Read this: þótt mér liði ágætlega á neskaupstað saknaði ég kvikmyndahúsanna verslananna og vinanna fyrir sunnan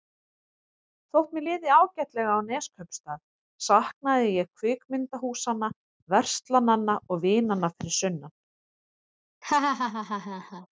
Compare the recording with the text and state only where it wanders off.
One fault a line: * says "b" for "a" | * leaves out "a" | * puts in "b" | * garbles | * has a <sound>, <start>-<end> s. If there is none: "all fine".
* has a laugh, 9.4-10.7 s